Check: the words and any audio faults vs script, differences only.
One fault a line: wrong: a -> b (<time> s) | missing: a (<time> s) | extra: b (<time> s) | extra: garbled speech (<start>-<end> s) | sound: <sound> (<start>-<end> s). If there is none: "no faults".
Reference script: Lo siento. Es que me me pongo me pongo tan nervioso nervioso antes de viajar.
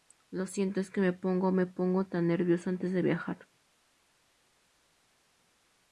missing: me (1.1 s)
missing: nervioso (2.7 s)